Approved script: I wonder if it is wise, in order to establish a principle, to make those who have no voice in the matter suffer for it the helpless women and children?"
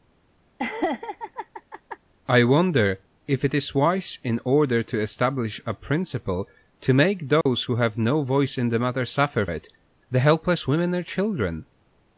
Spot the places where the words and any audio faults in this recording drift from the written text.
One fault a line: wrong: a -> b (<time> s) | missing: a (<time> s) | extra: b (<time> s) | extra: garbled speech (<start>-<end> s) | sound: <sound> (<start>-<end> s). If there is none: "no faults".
sound: laugh (0.6-2.0 s)
sound: dropout (7.4-7.5 s)
missing: for (9.4 s)